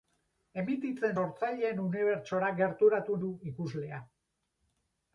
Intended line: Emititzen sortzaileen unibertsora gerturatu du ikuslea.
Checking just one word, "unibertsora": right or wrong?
right